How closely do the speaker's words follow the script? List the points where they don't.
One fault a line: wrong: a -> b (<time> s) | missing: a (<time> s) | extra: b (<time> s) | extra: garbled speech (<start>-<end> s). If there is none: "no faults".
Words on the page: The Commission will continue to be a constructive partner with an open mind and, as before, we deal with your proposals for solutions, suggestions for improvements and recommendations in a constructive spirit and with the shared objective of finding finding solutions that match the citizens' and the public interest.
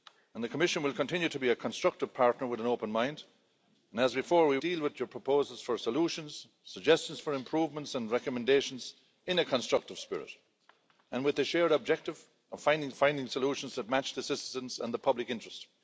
no faults